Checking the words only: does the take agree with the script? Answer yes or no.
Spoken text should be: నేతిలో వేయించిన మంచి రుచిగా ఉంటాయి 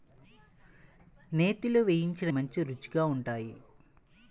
yes